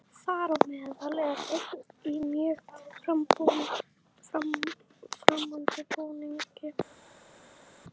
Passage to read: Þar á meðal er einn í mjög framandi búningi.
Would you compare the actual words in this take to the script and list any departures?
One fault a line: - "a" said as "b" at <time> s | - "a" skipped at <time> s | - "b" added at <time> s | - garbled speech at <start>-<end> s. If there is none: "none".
none